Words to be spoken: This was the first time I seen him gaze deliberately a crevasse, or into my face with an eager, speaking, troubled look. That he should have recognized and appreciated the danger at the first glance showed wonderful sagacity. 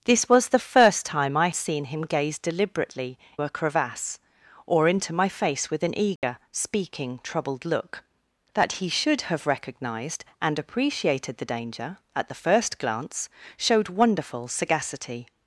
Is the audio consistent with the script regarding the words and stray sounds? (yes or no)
no